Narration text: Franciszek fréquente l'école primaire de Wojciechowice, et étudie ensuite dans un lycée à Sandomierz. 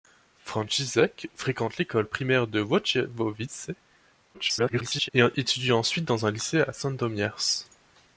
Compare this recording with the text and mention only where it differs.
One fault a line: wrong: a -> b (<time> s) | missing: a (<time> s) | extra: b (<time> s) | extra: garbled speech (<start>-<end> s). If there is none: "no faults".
extra: garbled speech (4.3-5.1 s)